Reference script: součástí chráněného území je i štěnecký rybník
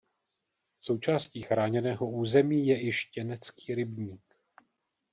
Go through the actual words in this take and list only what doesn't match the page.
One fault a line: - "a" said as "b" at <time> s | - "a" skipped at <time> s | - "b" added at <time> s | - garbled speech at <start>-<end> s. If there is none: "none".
none